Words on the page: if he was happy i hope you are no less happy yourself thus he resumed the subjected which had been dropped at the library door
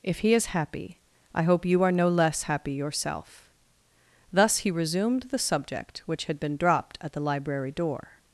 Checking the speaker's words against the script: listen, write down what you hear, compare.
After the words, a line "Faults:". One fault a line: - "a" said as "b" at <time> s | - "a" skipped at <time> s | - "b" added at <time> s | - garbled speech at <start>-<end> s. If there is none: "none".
if he is happy i hope you are no less happy yourself thus he resumed the subject which had been dropped at the library door
Faults:
- "was" said as "is" at 0.3 s
- "subjected" said as "subject" at 5.4 s